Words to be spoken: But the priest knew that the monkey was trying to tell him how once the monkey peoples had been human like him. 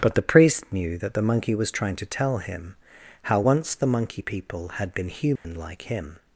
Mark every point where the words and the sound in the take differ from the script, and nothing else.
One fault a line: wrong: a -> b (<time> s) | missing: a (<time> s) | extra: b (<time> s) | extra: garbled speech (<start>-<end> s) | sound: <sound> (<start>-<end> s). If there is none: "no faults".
wrong: peoples -> people (4.2 s)
sound: dropout (5.4-5.4 s)